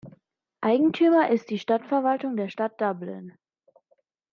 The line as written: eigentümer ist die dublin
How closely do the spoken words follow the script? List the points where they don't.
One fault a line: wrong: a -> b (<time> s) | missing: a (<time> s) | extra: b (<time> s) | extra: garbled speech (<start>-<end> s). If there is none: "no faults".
extra: stadtverwaltung der stadt (1.6 s)